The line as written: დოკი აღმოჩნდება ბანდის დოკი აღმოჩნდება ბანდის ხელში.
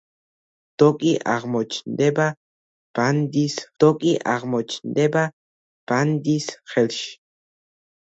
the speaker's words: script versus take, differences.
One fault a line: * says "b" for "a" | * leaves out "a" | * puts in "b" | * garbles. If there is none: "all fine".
all fine